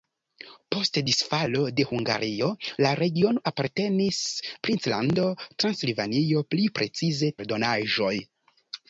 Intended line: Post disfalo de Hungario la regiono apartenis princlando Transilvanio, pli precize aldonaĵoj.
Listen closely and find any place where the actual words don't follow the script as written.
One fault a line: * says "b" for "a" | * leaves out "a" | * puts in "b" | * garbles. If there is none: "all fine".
all fine